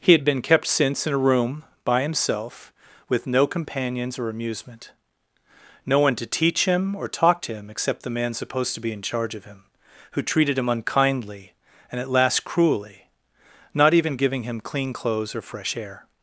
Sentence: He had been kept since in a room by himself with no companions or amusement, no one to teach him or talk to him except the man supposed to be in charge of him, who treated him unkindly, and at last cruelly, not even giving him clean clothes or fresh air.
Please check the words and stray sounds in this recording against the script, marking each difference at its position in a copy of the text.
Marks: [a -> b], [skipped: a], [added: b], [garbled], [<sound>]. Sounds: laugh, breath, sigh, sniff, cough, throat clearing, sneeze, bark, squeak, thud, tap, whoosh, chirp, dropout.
He had been kept since in a room by himself with no companions or amusement, no one to teach him or talk to him except the man supposed to be in charge of him, who treated him unkindly, and at last cruelly, not even giving him clean clothes or fresh air.